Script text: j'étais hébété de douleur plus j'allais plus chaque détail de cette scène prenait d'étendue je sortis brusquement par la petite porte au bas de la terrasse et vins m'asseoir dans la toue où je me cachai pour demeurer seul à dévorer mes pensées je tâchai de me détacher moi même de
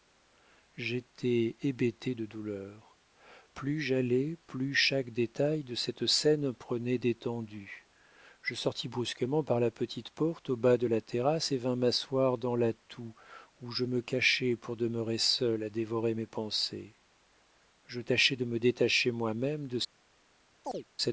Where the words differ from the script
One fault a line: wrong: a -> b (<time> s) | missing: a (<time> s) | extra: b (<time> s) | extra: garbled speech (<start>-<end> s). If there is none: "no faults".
no faults